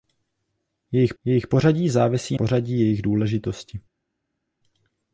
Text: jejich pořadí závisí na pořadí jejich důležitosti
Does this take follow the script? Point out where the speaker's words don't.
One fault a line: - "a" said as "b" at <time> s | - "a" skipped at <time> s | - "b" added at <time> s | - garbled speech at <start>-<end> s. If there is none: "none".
- "jejich" added at 1.2 s
- "na" skipped at 2.4 s